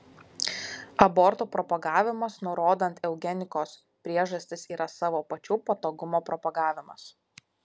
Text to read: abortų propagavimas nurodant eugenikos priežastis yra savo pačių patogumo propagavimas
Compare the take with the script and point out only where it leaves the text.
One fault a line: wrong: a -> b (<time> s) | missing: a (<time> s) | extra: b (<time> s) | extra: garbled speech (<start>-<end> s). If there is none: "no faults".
no faults